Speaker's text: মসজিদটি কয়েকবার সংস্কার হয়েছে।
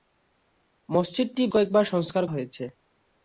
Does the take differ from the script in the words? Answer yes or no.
no